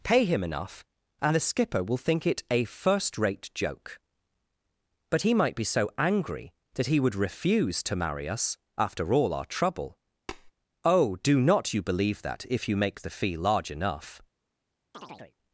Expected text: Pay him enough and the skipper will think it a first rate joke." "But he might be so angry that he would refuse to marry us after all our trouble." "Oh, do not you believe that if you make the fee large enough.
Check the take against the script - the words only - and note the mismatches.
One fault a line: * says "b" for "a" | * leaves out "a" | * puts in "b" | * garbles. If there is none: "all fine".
all fine